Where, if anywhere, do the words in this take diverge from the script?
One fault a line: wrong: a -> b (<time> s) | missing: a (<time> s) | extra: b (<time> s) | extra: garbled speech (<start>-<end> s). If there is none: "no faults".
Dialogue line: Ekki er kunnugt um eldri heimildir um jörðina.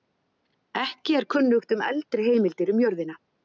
no faults